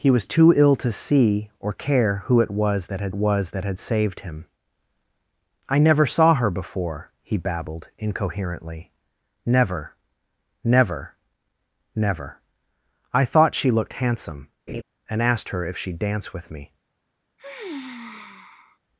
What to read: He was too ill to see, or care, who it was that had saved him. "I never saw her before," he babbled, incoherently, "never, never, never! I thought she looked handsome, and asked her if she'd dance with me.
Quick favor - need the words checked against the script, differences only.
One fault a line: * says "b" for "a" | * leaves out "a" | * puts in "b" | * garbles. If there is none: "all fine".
* puts in "was that had"